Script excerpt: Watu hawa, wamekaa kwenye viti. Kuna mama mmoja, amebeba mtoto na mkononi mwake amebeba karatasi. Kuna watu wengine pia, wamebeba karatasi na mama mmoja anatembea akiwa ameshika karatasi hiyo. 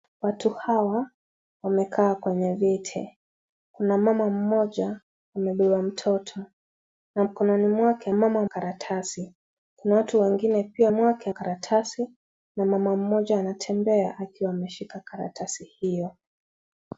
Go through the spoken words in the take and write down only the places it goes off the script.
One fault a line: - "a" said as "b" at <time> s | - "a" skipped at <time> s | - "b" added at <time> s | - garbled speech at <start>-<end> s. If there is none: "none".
- "amebeba" said as "mama" at 8.1 s
- "wamebeba" said as "mwake" at 10.9 s